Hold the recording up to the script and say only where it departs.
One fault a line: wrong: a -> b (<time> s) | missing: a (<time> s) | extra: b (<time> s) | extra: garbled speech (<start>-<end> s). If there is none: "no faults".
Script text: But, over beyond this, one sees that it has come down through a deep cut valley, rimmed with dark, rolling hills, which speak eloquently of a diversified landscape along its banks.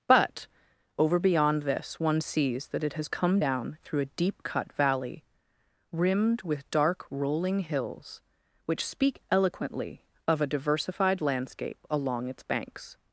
no faults